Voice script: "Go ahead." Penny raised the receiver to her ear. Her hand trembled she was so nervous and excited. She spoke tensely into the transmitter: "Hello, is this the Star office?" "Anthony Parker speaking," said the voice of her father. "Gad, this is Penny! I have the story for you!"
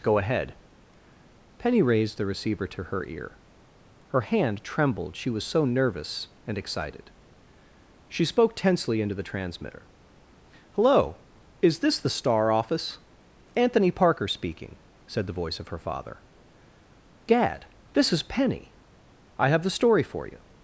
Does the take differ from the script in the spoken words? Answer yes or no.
no